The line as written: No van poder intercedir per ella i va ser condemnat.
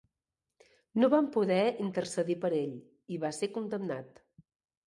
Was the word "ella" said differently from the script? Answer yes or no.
yes